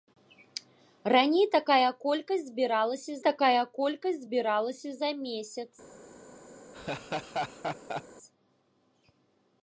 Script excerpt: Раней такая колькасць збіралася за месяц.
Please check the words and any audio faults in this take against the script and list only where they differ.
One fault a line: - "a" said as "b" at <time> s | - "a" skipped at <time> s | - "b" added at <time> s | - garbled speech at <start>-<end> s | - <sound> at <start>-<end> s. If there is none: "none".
- "такая колькасць збіралася" added at 3.3 s
- laugh at 6.7-8.0 s